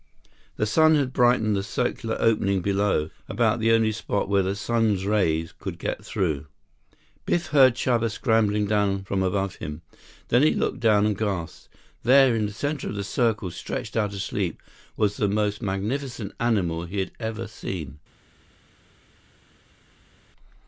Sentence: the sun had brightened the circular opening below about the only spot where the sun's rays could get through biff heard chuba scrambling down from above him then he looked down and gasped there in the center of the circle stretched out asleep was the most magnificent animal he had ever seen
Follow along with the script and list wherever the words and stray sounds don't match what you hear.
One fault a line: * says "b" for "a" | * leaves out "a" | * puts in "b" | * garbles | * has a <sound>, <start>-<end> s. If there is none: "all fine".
all fine